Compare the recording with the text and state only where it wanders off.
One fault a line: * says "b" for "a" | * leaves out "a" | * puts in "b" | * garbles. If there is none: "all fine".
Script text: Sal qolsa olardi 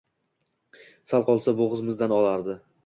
* puts in "bo`g`zimizdan"